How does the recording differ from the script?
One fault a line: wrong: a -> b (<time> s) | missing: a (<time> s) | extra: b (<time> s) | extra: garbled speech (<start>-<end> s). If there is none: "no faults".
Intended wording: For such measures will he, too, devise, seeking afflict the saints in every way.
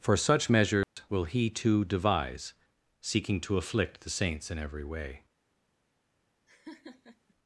extra: to (3.4 s)